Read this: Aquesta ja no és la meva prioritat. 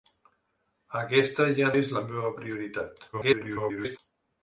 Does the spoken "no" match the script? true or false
false